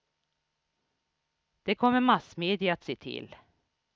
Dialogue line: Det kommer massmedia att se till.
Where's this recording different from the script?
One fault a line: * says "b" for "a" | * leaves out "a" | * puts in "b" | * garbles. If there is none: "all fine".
all fine